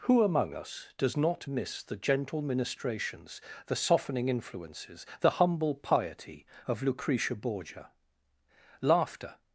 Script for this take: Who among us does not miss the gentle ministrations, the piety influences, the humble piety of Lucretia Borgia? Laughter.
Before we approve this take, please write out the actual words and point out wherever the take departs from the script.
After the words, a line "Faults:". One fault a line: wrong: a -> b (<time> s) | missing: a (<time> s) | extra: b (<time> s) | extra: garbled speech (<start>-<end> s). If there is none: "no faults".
Who among us does not miss the gentle ministrations, the softening influences, the humble piety of Lucretia Borgia? Laughter.
Faults:
wrong: piety -> softening (3.7 s)